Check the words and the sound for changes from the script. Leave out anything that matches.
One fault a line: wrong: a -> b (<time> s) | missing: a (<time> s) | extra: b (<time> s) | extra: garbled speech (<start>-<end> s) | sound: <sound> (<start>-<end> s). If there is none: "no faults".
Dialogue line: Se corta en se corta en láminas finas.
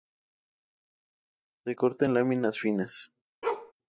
missing: se corta en (2.1 s)
sound: bark (3.4-3.7 s)